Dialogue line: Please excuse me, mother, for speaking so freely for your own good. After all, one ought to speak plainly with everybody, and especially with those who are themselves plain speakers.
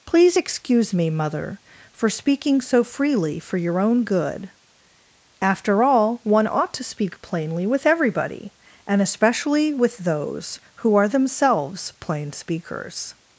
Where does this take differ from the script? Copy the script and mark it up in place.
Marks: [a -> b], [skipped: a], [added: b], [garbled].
Please excuse me, mother, for speaking so freely for your own good. After all, one ought to speak plainly with everybody, and especially with those who are themselves plain speakers.